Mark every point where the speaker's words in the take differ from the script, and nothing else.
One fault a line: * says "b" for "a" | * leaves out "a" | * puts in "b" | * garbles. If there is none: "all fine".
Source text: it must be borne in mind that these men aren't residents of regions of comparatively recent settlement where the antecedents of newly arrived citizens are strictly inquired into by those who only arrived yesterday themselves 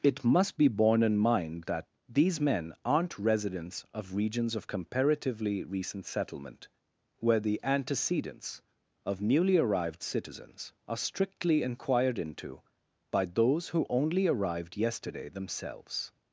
all fine